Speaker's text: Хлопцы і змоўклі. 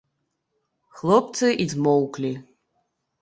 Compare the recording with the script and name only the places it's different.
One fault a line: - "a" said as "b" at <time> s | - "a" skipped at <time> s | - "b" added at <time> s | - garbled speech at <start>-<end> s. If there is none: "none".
none